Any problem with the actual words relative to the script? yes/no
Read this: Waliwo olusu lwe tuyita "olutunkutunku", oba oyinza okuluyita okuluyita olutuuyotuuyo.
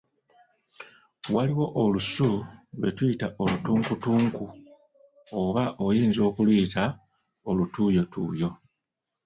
yes